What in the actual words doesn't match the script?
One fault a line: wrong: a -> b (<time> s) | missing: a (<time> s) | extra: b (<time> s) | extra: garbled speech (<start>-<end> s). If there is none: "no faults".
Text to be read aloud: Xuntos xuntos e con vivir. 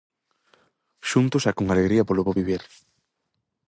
missing: xuntos (1.4 s)
extra: alegría polo bo (1.7 s)